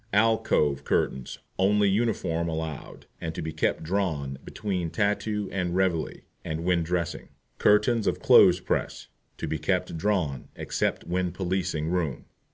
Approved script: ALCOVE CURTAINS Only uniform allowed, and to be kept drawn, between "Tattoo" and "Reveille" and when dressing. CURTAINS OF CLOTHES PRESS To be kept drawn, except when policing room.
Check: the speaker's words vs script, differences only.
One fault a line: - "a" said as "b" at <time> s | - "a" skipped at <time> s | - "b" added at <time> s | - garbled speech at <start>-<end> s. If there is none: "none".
none